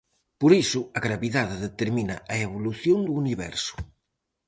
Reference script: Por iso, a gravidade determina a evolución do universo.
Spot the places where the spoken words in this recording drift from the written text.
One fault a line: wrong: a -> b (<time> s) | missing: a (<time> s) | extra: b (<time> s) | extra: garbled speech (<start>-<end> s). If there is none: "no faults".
no faults